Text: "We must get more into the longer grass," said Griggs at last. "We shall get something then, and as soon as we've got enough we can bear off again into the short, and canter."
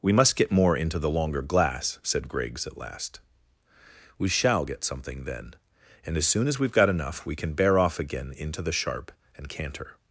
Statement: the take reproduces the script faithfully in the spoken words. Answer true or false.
false